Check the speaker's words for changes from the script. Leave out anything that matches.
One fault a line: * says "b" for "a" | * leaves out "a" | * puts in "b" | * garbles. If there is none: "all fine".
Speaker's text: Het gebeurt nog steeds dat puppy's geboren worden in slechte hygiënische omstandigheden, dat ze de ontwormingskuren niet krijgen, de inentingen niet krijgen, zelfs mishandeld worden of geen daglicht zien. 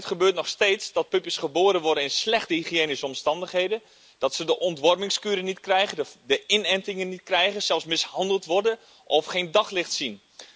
all fine